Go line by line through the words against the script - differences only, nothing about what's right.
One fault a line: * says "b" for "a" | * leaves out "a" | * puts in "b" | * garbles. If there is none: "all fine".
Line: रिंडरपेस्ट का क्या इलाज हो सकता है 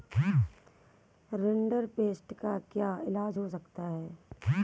all fine